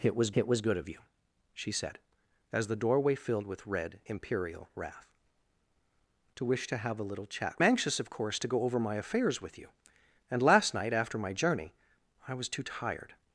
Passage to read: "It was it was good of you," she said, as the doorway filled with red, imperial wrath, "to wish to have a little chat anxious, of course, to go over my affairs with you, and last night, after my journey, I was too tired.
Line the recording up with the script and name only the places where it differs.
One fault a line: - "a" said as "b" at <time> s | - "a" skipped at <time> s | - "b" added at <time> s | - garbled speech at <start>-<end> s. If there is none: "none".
none